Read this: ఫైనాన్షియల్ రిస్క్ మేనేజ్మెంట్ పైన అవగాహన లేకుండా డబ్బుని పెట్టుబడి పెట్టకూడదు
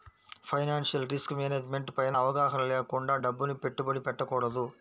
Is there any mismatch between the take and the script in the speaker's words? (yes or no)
no